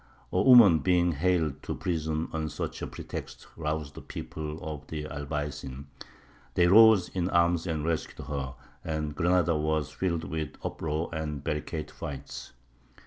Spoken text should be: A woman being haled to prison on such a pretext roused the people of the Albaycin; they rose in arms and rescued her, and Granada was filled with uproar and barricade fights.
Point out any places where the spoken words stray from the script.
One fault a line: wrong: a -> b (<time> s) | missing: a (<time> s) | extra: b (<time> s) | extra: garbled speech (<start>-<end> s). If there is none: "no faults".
no faults